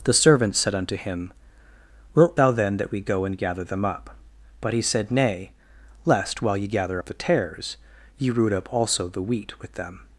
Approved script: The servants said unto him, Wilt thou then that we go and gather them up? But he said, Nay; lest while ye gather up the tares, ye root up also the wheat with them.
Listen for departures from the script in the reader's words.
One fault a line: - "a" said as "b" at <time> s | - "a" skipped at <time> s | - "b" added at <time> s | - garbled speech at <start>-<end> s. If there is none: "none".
none